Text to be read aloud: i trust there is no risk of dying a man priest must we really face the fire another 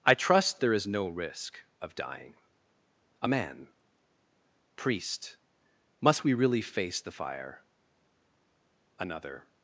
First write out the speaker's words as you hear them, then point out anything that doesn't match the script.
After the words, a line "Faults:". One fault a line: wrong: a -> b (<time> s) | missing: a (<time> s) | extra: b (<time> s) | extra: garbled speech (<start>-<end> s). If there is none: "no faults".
i trust there is no risk of dying a man priest must we really face the fire another
Faults:
no faults